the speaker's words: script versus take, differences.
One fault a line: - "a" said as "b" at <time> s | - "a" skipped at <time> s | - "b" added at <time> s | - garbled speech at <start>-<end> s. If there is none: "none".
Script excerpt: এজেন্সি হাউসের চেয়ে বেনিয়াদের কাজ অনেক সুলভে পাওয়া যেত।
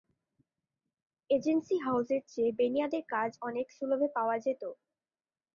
none